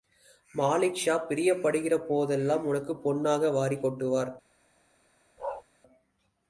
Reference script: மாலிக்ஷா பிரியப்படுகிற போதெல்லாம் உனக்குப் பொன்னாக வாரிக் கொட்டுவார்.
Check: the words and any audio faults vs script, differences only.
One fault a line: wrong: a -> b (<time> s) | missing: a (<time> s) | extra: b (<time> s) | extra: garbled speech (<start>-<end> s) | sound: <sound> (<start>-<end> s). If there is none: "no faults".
sound: bark (5.4-5.6 s)